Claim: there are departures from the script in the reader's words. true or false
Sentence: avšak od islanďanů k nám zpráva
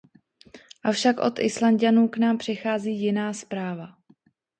true